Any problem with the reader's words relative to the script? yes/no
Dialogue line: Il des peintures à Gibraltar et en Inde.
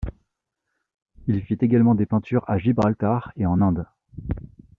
yes